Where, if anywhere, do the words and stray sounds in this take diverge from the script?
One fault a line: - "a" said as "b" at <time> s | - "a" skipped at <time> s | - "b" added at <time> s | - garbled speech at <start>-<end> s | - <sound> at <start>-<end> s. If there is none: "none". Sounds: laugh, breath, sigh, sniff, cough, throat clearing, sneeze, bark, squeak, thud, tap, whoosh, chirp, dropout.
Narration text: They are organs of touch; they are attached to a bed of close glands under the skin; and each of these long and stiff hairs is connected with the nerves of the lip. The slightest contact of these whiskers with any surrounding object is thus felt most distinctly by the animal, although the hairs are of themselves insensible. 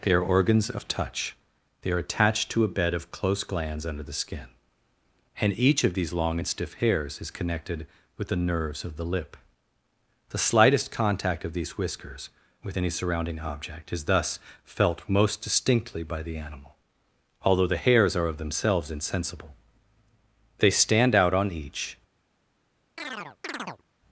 - "They stand out on each" added at 20.6 s
- chirp at 23.0-23.8 s